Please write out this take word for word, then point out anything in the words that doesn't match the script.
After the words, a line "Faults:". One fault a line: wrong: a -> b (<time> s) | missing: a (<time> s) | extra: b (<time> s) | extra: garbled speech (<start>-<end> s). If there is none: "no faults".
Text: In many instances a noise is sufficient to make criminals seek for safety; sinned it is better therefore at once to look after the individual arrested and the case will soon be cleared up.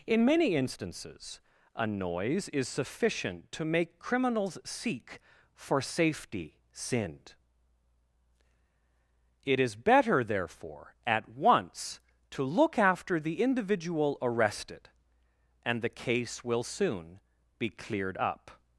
In many instances a noise is sufficient to make criminals seek for safety; sinned it is better therefore at once to look after the individual arrested and the case will soon be cleared up.
Faults:
no faults